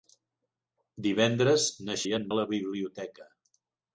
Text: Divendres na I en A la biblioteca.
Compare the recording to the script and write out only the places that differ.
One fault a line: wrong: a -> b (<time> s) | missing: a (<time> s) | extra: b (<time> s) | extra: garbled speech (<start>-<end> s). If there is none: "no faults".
no faults